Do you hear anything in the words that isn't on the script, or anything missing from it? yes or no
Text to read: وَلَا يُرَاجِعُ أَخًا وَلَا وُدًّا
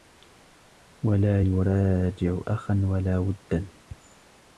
no